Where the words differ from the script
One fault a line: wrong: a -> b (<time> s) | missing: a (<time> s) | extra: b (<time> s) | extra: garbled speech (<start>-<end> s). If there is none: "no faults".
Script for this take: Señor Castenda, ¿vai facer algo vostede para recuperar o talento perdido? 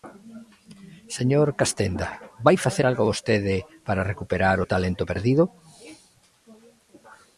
no faults